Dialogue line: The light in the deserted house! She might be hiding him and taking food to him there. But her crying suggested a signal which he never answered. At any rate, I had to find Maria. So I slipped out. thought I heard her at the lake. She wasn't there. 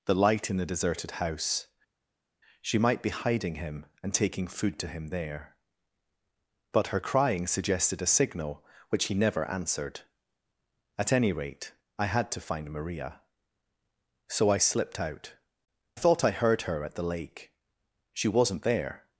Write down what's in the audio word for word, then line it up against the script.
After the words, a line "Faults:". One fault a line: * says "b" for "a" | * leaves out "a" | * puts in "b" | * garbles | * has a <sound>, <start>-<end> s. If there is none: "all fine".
The light in the deserted house! She might be hiding him and taking food to him there. But her crying suggested a signal which he never answered. At any rate, I had to find Maria. So I slipped out. thought I heard her at the lake. She wasn't there.
Faults:
all fine